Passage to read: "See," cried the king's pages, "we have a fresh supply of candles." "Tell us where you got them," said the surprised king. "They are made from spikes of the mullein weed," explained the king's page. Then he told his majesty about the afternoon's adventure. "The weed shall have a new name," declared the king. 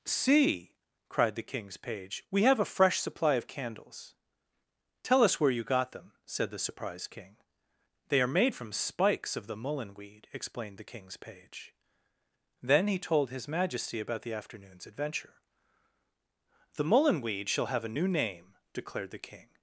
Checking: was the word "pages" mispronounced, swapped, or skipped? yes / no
yes